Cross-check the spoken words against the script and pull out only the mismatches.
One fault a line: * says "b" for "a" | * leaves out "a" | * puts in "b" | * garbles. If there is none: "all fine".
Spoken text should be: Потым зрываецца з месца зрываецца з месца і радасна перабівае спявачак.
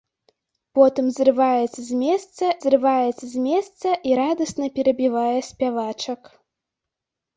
all fine